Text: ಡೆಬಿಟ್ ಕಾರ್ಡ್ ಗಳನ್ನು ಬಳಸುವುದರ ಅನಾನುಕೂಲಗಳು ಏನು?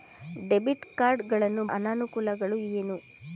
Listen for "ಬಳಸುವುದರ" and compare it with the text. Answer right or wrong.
wrong